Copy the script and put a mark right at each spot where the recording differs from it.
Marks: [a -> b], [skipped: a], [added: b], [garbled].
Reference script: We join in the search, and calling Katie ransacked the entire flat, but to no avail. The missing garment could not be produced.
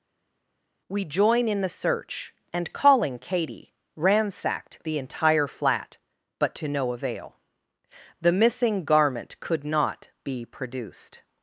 We join in the search, and calling Katie ransacked the entire flat, but to no avail. The missing garment could not be produced.